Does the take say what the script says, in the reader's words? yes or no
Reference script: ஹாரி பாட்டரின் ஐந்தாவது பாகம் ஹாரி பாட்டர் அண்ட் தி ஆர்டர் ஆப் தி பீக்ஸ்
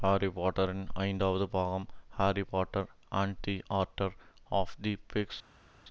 yes